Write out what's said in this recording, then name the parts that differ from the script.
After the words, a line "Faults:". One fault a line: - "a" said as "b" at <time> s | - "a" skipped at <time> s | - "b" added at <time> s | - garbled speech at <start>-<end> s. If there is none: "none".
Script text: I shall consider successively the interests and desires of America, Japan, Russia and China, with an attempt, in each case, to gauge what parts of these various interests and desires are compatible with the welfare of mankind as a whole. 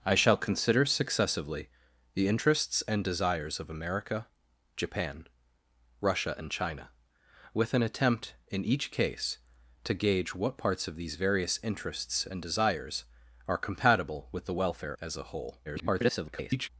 I shall consider successively the interests and desires of America, Japan, Russia and China, with an attempt, in each case, to gauge what parts of these various interests and desires are compatible with the welfare as a whole. [garbled]
Faults:
- "of mankind" skipped at 14.9 s
- garbled speech at 15.6-16.7 s